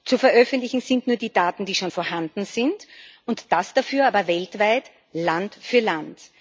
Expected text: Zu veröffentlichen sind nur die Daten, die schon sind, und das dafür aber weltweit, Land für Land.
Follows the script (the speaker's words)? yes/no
no